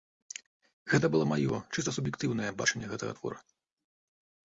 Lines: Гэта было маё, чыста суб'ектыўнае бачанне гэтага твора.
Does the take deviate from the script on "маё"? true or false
false